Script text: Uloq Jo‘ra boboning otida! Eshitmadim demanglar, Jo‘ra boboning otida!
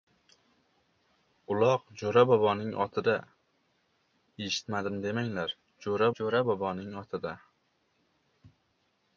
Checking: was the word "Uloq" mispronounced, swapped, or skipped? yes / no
no